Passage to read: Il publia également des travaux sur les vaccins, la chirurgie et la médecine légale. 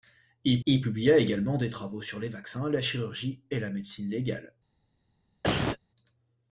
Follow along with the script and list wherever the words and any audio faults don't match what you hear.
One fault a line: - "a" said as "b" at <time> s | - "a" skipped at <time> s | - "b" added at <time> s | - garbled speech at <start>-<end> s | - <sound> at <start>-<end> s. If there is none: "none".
- "il" added at 0.6 s
- cough at 5.4-5.8 s